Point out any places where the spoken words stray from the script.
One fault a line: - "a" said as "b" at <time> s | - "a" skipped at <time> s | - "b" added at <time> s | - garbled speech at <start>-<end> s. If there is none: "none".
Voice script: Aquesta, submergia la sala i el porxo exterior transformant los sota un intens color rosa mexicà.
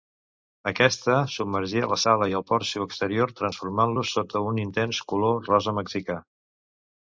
none